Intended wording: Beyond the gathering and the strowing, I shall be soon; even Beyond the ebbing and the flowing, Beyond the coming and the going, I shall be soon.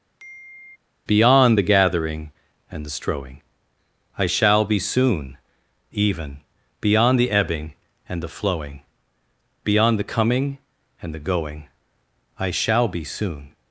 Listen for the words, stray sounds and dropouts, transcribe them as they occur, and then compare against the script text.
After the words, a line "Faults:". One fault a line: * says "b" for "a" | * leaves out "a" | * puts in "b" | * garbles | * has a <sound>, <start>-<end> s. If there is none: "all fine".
Beyond the gathering and the strowing, I shall be soon; even Beyond the ebbing and the flowing, Beyond the coming and the going, I shall be soon.
Faults:
* has a sigh, 0.2-0.8 s